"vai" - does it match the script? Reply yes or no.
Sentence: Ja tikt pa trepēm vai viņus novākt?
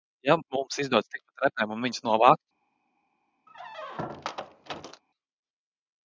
no